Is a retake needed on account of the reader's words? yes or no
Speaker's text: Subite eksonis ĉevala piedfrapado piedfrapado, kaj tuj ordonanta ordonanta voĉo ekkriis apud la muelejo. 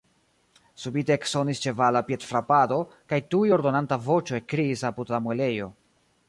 yes